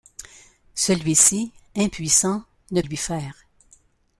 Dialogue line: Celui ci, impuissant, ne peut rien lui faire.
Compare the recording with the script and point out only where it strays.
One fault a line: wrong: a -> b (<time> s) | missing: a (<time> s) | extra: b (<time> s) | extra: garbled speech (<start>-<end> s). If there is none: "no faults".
missing: peut rien (2.8 s)